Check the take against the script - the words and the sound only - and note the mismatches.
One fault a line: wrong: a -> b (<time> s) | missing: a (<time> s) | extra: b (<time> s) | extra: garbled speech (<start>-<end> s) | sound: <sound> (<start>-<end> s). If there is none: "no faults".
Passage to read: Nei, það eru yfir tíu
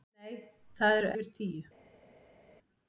no faults